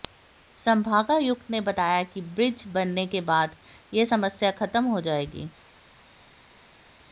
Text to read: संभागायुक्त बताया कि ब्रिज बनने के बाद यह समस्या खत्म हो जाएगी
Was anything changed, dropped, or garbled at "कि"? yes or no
no